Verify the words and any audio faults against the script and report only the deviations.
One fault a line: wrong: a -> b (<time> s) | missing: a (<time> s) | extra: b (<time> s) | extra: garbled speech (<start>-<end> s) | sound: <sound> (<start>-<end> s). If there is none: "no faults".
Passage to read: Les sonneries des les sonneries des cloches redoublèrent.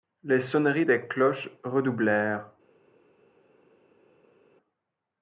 missing: les sonneries des (1.1 s)